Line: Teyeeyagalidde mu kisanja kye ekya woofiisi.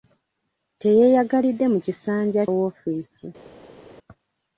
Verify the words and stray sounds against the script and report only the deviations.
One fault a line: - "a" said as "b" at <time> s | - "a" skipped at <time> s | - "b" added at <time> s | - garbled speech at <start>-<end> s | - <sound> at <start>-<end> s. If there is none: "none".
- "kye ekya" skipped at 2.4 s